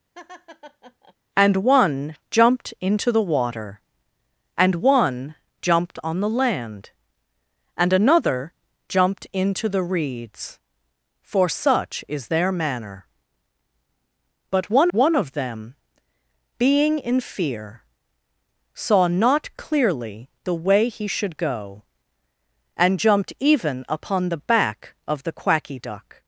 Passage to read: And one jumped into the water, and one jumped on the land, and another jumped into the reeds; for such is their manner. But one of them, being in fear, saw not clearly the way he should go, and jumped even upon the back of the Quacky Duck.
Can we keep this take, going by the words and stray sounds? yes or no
no